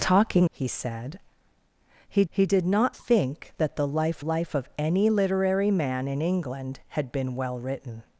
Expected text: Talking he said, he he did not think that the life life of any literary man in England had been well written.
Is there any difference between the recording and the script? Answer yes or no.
no